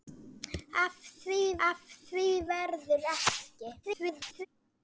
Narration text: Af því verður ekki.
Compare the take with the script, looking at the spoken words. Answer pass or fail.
fail